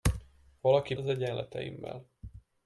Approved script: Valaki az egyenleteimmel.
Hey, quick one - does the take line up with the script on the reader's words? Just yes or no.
yes